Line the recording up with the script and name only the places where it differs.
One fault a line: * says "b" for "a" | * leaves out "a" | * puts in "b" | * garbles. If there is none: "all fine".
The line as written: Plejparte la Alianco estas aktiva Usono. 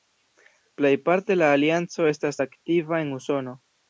* puts in "en"